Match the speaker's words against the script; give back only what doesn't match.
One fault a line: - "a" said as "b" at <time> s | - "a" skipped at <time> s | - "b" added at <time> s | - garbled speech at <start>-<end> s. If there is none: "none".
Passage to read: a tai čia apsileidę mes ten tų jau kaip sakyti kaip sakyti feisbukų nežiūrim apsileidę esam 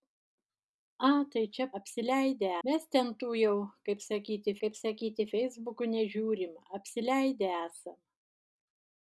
none